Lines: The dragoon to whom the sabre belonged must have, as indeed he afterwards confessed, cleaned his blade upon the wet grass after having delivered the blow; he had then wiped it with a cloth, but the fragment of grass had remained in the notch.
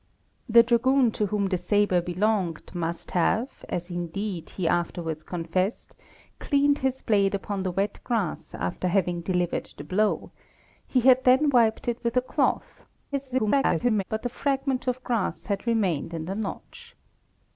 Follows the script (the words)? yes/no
no